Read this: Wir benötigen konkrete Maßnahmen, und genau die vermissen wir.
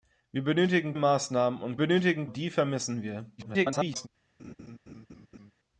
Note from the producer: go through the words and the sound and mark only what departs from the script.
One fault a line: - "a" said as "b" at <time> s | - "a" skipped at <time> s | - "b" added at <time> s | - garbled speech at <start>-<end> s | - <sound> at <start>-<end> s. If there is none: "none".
- "konkrete" skipped at 0.9 s
- "genau" said as "benötigen" at 1.8 s
- garbled speech at 3.4-4.1 s
- laugh at 4.4-5.5 s